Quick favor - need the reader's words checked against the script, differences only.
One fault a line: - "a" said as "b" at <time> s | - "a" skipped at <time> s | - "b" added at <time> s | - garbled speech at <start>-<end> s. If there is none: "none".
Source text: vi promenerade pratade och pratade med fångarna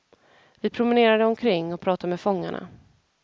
- "pratade" said as "omkring" at 1.2 s